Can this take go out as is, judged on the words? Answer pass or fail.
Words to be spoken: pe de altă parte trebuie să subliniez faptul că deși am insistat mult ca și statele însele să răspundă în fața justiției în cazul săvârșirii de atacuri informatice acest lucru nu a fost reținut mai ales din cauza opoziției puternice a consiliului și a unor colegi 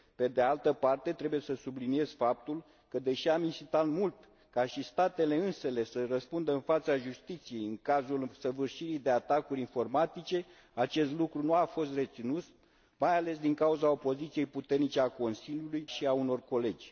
pass